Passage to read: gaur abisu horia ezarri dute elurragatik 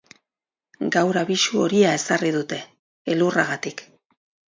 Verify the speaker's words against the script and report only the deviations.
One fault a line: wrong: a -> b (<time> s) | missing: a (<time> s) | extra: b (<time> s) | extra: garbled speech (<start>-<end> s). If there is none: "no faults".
no faults